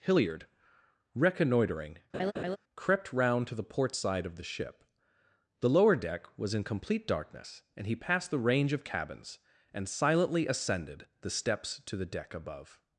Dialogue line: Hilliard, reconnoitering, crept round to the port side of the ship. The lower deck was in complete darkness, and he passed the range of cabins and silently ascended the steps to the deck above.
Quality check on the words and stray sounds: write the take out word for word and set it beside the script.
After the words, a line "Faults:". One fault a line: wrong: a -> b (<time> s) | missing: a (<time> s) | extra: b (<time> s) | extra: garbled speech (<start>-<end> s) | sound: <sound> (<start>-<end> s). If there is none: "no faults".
Hilliard, reconnoitering, crept round to the port side of the ship. The lower deck was in complete darkness, and he passed the range of cabins and silently ascended the steps to the deck above.
Faults:
sound: laugh (2.1-2.6 s)